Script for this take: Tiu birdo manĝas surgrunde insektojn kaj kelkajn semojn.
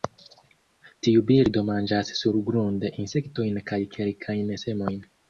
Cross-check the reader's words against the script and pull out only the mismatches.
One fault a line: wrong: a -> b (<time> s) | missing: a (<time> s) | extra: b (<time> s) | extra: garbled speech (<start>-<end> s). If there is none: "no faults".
no faults